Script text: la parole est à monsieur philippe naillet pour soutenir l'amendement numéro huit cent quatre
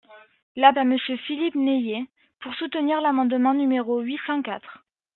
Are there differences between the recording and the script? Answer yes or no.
yes